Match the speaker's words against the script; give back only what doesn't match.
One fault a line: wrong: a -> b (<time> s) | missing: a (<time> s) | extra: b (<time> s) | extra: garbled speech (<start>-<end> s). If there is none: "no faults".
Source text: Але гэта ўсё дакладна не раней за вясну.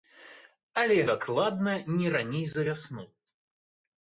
missing: гэта ўсё (0.9 s)